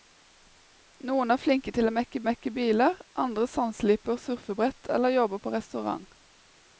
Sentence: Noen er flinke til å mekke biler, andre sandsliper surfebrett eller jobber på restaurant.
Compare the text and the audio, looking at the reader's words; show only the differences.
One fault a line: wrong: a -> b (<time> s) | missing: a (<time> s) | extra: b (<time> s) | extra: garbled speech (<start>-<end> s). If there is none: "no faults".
extra: mekke (2.3 s)